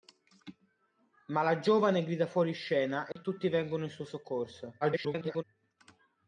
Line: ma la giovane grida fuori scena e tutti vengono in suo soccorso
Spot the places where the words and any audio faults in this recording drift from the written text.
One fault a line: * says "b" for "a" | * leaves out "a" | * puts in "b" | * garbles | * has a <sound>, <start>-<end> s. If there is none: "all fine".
* has a dropout, 3.1-3.2 s
* garbles